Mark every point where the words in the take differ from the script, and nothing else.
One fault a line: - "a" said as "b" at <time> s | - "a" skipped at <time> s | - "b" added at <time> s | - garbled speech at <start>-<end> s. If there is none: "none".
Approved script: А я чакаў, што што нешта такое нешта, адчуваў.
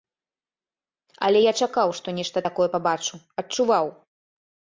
- "А" said as "Але" at 1.3 s
- "што" skipped at 2.1 s
- "нешта" said as "пабачу" at 2.8 s